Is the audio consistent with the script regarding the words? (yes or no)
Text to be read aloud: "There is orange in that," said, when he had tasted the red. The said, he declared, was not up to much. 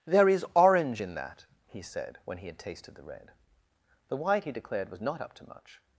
no